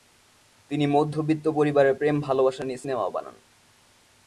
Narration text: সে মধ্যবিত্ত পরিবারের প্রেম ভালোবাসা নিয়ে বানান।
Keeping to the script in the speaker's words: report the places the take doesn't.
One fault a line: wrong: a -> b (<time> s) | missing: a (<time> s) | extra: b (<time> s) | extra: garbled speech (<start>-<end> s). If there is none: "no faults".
wrong: সে -> তিনি (0.7 s)
extra: সিনেমা (2.8 s)